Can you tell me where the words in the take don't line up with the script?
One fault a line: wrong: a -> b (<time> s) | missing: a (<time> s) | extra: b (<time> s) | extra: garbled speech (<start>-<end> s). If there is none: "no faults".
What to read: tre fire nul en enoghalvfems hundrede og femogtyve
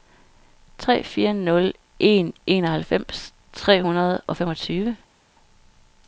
extra: tre (3.5 s)